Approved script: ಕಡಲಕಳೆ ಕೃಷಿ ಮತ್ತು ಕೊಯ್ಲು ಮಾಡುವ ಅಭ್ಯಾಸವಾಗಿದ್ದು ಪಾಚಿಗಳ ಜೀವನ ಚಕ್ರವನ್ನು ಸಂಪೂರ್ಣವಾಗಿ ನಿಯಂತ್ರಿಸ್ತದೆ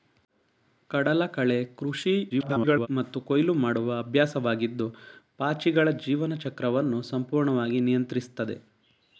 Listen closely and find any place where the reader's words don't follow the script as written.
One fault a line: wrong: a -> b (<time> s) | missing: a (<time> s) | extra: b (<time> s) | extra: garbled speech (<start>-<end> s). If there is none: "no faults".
extra: garbled speech (2.3-2.9 s)